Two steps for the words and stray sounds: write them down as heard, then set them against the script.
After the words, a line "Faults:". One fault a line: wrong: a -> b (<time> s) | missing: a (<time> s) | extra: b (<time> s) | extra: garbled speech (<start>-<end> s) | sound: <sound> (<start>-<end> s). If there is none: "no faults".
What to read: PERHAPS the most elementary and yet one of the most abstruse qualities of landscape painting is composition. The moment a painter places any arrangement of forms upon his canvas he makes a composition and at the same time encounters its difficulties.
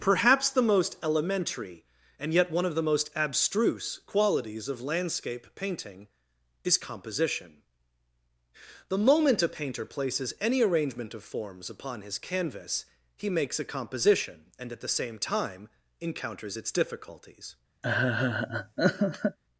PERHAPS the most elementary and yet one of the most abstruse qualities of landscape painting is composition. The moment a painter places any arrangement of forms upon his canvas he makes a composition and at the same time encounters its difficulties.
Faults:
sound: laugh (17.8-19.4 s)